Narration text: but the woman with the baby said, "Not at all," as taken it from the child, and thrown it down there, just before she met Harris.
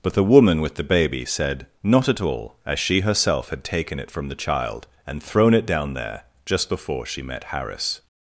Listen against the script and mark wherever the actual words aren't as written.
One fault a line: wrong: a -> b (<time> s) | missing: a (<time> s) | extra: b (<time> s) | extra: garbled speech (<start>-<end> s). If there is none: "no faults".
extra: she herself had (2.8 s)